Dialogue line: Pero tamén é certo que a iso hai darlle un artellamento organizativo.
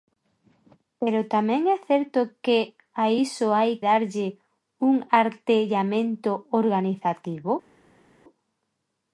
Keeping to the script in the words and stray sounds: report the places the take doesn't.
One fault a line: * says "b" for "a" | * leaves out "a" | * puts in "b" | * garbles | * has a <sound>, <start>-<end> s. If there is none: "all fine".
all fine